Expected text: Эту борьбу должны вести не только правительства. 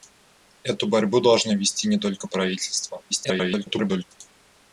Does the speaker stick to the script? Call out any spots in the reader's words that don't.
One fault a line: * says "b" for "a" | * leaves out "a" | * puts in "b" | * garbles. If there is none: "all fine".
* garbles